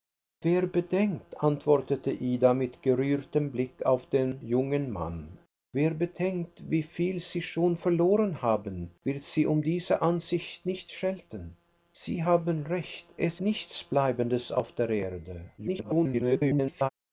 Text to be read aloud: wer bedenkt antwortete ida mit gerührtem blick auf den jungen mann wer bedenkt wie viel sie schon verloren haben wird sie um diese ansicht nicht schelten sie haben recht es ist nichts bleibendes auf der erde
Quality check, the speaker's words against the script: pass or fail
fail